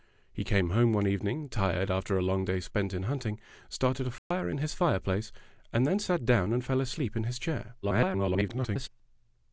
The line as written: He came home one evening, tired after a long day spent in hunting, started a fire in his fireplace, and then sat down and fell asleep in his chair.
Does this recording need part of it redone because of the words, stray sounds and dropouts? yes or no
yes